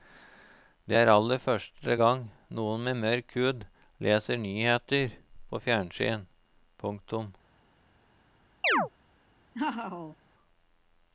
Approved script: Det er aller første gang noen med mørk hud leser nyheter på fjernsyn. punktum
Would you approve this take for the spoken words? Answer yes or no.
yes